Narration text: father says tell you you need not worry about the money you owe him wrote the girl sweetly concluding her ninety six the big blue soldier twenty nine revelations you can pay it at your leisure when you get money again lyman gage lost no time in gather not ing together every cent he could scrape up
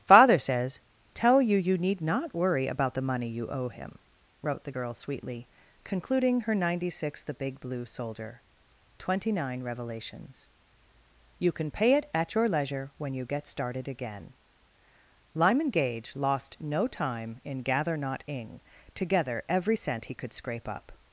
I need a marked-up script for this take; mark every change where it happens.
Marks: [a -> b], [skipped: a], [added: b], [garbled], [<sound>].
father says tell you you need not worry about the money you owe him wrote the girl sweetly concluding her ninety six the big blue soldier twenty nine revelations you can pay it at your leisure when you get [money -> started] again lyman gage lost no time in gather not ing together every cent he could scrape up